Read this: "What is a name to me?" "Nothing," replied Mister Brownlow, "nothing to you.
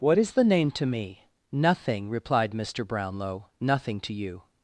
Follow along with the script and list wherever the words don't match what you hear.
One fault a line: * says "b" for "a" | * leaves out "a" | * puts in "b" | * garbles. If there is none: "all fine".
* says "the" for "a"